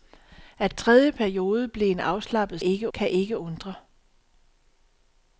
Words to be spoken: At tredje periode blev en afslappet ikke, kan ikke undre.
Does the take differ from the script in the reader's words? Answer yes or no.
no